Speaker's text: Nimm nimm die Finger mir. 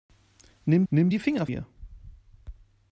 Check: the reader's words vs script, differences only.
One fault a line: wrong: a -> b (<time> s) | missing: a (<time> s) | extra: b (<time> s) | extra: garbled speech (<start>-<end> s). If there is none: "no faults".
no faults